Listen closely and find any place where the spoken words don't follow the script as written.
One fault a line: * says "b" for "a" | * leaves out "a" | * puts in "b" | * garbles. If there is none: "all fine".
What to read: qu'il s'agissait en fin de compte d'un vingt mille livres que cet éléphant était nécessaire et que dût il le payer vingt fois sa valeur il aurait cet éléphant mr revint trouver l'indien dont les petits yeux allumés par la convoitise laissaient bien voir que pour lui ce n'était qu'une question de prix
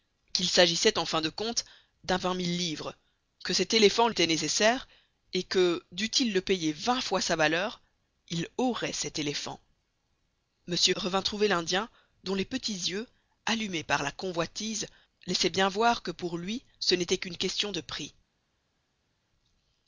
all fine